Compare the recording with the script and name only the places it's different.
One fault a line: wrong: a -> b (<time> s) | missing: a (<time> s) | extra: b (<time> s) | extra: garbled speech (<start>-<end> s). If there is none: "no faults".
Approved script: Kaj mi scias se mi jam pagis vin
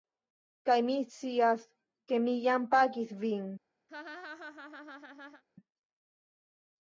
wrong: se -> ke (2.1 s)